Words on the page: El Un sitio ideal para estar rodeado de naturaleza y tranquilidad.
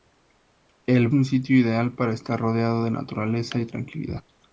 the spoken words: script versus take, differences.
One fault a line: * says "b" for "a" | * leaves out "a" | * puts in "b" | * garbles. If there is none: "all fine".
all fine